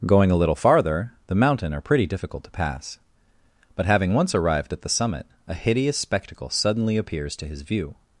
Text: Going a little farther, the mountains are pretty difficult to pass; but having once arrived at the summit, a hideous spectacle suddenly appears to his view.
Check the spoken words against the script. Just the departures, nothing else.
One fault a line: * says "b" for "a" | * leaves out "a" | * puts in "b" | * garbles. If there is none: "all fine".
* says "mountain" for "mountains"